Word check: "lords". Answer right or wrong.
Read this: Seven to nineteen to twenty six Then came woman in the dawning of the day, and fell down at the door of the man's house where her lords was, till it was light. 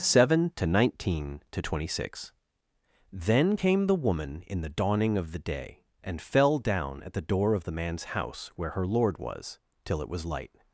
wrong